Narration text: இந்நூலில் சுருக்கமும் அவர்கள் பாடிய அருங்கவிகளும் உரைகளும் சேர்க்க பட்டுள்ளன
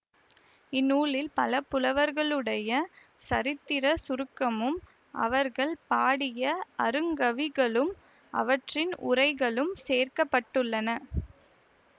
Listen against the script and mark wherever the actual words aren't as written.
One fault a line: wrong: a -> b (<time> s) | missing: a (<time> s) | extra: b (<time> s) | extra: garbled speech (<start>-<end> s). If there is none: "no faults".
extra: பல புலவர்களுடைய சரித்திரச் (1.3 s)
extra: அவற்றின் (8.3 s)